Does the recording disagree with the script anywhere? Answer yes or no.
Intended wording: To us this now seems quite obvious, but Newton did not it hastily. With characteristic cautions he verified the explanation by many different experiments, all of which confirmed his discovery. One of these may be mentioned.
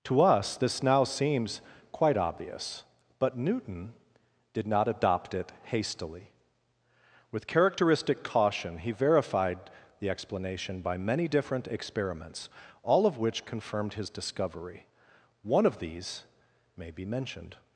yes